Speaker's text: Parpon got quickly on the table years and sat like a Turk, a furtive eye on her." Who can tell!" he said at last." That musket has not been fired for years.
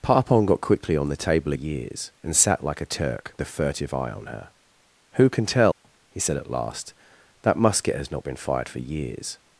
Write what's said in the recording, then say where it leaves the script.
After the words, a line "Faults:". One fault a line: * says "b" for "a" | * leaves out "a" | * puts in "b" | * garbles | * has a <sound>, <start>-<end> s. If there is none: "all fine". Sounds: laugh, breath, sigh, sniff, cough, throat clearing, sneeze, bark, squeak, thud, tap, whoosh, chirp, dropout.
Parpon got quickly on the table years and sat like a Turk, a furtive eye on her." Who can tell!" he said at last." That musket has not been fired for years.
Faults:
* has a dropout, 5.7-5.8 s